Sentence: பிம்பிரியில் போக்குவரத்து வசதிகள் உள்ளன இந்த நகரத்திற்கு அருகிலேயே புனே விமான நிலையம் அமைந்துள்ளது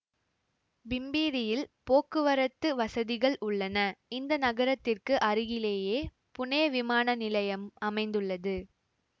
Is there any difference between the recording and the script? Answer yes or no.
no